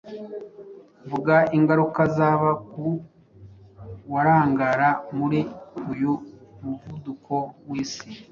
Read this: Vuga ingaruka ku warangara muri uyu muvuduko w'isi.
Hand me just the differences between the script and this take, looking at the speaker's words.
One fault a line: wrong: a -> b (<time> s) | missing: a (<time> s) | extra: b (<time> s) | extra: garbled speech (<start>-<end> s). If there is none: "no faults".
extra: zaba (2.2 s)